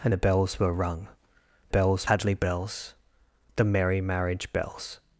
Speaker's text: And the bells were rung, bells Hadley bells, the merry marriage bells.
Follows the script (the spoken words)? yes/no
yes